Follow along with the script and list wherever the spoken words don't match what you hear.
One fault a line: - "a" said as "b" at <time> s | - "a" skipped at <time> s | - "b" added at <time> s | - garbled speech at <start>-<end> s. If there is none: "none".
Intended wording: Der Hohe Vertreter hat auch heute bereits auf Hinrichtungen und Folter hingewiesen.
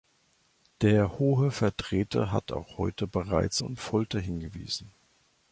- "auf Hinrichtungen" skipped at 3.6 s